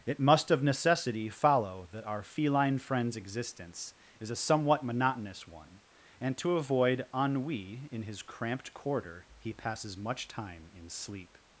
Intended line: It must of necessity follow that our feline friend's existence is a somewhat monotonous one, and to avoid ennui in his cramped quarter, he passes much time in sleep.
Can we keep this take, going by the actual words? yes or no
yes